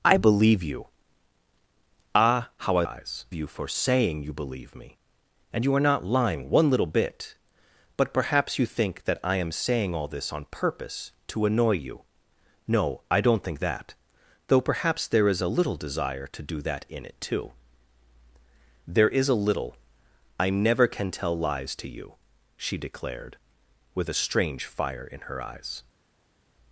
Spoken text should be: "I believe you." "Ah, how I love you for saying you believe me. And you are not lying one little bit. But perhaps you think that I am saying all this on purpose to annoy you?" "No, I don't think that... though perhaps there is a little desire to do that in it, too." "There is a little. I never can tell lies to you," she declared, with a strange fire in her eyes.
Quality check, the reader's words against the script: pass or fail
fail